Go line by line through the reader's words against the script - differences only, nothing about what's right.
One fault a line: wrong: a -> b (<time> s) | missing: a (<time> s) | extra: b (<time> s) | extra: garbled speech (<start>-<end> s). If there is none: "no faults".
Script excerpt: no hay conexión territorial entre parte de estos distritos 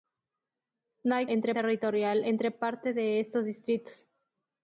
wrong: conexión -> entre (1.3 s)